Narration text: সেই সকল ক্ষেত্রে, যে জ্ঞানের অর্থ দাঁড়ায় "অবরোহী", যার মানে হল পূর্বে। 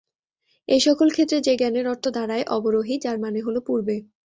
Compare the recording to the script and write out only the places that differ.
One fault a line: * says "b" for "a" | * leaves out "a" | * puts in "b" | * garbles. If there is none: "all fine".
* says "এই" for "সেই"